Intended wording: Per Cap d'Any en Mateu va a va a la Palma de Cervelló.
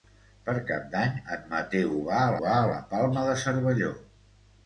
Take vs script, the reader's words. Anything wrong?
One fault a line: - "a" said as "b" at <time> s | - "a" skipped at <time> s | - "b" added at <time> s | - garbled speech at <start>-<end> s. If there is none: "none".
none